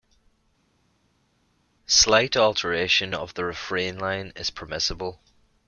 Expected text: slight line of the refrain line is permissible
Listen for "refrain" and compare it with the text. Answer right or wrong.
right